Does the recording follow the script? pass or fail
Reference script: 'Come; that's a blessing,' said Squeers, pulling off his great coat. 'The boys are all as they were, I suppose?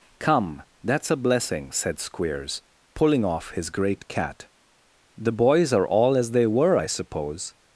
fail